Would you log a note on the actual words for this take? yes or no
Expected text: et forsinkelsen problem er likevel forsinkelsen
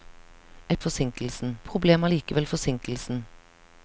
no